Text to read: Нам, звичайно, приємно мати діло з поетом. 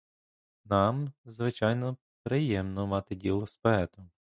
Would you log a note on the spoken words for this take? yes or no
no